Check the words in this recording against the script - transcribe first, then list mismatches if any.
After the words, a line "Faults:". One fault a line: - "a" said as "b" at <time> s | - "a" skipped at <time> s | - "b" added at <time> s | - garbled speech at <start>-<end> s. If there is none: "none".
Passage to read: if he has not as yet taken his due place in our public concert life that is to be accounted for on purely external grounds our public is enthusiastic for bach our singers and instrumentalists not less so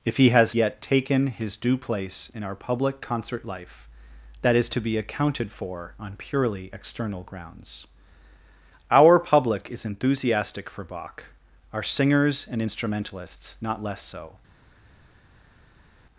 if he has yet taken his due place in our public concert life that is to be accounted for on purely external grounds our public is enthusiastic for bach our singers and instrumentalists not less so
Faults:
- "not as" skipped at 0.6 s